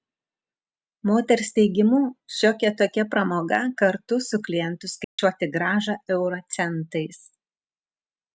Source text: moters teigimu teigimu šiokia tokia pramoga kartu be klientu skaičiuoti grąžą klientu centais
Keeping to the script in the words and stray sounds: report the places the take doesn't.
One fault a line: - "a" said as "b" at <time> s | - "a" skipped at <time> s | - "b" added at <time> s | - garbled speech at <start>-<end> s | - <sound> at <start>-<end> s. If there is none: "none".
- "teigimu" skipped at 2.0 s
- "be" said as "su" at 4.3 s
- dropout at 5.0-5.2 s
- "klientu" said as "euro" at 6.2 s